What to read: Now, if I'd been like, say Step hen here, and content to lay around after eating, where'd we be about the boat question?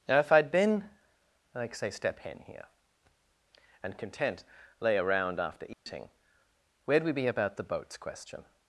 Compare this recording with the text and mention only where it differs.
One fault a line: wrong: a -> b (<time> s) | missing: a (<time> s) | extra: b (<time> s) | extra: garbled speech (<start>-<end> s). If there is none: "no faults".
missing: to (4.4 s)
wrong: boat -> boats (7.6 s)